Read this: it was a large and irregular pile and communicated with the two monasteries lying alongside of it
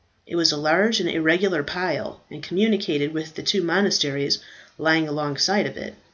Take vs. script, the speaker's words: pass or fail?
pass